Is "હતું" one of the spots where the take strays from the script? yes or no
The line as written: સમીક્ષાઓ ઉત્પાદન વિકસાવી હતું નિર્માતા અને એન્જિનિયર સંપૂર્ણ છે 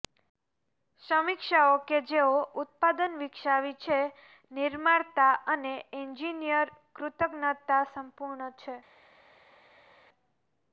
yes